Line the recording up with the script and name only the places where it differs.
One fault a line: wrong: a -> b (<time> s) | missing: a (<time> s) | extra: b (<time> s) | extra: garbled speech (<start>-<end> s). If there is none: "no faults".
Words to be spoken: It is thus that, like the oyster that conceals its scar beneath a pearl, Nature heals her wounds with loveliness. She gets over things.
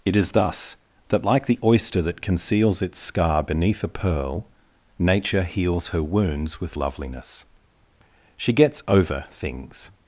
no faults